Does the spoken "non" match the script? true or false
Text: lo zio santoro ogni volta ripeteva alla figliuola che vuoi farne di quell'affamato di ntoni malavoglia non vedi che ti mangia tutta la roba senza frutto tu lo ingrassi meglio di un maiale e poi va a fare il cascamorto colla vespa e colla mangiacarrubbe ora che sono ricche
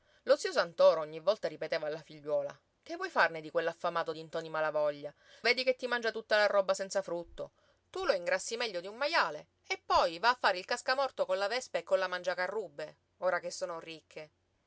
false